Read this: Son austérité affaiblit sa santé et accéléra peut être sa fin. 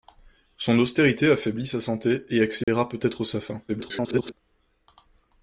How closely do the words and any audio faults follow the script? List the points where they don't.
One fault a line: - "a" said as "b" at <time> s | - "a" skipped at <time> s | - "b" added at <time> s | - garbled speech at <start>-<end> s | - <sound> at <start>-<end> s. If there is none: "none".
- dropout at 2.6-2.7 s
- garbled speech at 3.7-4.3 s